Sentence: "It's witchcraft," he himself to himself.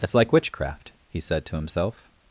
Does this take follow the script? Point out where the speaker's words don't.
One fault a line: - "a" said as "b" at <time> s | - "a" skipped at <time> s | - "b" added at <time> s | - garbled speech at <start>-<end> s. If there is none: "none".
- "like" added at 0.1 s
- "himself" said as "said" at 1.2 s